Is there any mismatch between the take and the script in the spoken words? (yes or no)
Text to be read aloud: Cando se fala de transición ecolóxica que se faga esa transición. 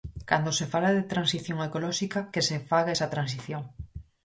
no